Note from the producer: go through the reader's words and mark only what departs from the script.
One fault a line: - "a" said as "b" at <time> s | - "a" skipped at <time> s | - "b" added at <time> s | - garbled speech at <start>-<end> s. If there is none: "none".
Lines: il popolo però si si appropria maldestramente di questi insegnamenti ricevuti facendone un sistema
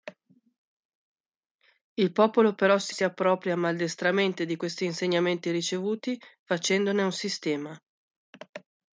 none